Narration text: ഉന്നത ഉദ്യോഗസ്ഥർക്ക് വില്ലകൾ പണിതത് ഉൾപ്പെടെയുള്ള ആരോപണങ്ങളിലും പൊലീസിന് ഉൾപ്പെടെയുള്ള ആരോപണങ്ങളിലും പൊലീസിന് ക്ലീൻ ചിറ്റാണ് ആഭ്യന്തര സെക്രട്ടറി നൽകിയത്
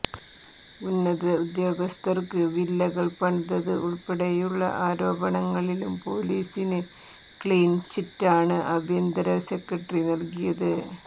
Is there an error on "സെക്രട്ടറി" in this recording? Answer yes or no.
no